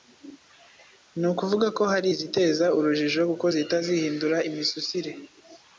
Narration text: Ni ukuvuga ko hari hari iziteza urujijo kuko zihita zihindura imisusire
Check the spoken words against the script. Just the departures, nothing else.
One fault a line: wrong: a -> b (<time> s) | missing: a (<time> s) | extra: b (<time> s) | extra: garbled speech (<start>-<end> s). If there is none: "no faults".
missing: hari (2.1 s)